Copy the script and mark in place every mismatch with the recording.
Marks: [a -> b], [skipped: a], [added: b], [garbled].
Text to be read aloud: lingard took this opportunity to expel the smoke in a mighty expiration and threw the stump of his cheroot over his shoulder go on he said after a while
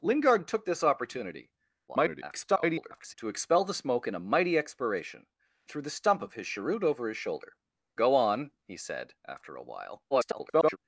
lingard took this opportunity [garbled] to expel the smoke in a mighty expiration [skipped: and] threw the stump of his cheroot over his shoulder go on he said after a while [garbled]